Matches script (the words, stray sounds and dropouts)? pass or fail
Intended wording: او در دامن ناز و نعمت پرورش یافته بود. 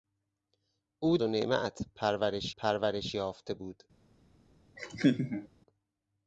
fail